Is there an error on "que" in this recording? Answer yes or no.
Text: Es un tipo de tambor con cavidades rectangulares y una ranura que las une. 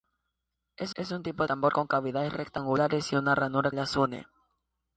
yes